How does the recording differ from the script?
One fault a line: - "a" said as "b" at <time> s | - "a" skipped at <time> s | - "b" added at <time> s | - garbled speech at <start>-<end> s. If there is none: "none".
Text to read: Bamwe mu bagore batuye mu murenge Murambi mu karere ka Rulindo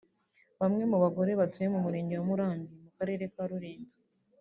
- "wa" added at 2.1 s